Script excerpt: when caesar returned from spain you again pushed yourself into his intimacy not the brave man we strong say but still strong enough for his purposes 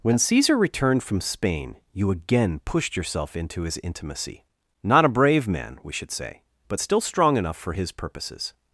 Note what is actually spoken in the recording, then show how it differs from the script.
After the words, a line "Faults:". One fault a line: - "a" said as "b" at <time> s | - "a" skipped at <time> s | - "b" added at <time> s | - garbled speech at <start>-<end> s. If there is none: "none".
when caesar returned from spain you again pushed yourself into his intimacy not a brave man we should say but still strong enough for his purposes
Faults:
- "the" said as "a" at 5.0 s
- "strong" said as "should" at 5.9 s